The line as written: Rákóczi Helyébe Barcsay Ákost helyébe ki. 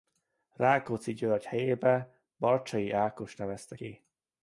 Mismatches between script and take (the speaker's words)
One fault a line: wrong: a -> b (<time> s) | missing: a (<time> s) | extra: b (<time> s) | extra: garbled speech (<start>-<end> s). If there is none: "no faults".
extra: György (1.1 s)
wrong: helyébe -> nevezte (3.4 s)